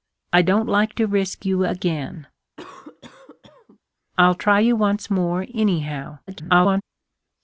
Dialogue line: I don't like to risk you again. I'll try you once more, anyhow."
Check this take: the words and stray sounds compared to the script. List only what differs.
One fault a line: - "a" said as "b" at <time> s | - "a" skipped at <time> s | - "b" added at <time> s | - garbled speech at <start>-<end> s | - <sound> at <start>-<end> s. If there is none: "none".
- cough at 2.6-3.8 s
- garbled speech at 6.3-6.8 s